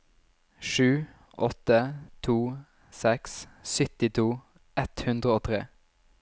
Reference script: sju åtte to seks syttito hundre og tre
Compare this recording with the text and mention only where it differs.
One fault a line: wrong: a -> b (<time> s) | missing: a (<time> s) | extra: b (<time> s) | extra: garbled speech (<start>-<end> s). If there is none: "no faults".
extra: ett (4.8 s)